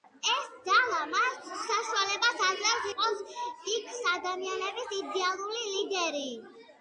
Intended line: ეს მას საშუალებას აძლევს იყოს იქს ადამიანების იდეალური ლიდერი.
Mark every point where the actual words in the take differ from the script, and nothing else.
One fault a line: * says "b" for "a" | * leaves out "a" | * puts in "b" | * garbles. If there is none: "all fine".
* puts in "ძალა"